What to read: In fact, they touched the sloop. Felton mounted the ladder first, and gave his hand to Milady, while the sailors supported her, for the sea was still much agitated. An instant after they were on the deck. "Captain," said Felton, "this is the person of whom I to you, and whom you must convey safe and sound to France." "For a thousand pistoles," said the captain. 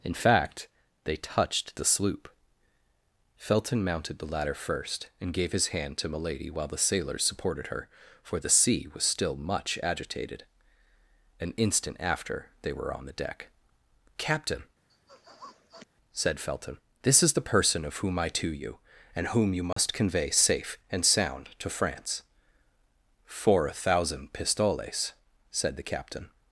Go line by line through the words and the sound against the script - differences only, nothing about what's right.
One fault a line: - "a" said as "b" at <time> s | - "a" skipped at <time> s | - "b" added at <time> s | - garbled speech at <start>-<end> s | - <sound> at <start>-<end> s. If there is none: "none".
- sniff at 14.9-15.9 s
- dropout at 19.7-19.8 s